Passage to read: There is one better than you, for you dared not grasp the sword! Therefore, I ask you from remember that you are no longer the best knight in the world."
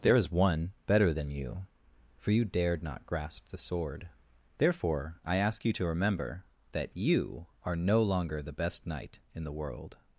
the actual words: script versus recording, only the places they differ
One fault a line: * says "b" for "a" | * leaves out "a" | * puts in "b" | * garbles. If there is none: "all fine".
* says "to" for "from"